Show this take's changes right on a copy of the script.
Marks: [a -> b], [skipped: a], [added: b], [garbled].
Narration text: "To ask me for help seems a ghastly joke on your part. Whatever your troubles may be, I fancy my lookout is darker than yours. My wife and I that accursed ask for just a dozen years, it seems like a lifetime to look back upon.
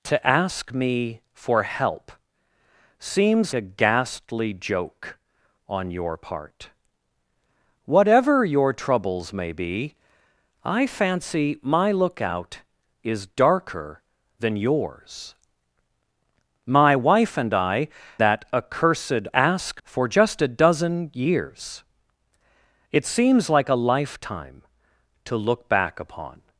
"To ask me for help seems a ghastly joke on your part. Whatever your troubles may be, I fancy my lookout is darker than yours. My wife and I that accursed ask for just a dozen years, it seems like a lifetime to look back upon.